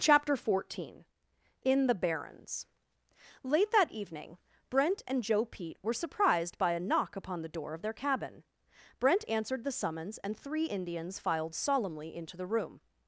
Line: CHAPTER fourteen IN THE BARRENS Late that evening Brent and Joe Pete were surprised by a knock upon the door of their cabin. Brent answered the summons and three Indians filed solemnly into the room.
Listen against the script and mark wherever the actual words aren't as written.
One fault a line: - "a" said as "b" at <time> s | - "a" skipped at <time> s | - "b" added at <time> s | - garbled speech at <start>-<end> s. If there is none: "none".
none